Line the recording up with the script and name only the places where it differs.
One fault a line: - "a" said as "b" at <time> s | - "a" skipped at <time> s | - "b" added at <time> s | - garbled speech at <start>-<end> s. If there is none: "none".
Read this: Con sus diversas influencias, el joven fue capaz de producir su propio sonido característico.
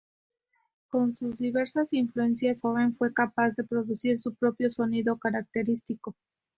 - "el" skipped at 2.6 s